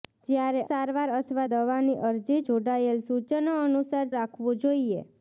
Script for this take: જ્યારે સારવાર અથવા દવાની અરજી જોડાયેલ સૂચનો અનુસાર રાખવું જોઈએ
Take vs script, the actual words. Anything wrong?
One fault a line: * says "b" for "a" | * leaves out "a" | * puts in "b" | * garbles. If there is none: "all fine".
all fine